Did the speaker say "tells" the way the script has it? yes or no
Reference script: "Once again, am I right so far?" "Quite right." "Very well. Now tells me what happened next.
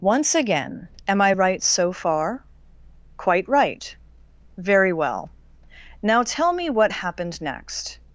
no